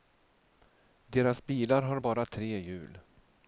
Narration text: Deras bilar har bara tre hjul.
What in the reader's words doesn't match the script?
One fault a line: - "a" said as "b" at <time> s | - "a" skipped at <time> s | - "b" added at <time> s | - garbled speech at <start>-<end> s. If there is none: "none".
none